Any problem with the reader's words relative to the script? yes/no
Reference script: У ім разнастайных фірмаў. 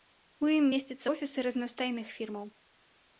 yes